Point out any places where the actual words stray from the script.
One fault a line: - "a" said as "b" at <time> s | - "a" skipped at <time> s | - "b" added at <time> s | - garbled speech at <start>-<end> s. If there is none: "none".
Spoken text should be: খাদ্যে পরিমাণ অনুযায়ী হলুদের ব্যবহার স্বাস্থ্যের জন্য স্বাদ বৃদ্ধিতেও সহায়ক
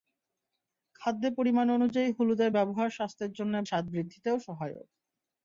none